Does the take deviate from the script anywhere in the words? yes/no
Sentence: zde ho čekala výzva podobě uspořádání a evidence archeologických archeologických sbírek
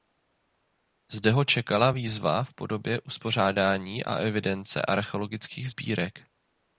yes